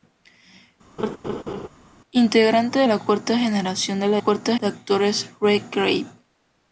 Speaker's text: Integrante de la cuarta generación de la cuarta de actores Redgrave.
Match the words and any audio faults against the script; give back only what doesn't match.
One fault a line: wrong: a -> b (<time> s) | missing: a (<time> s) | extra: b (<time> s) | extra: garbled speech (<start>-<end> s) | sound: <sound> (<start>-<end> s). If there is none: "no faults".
sound: laugh (1.0-1.7 s)